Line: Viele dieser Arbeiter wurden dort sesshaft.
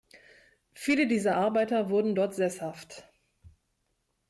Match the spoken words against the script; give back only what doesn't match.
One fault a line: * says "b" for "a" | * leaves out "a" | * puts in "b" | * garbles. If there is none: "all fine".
all fine